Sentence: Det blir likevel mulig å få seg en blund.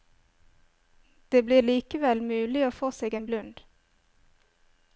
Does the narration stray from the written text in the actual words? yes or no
no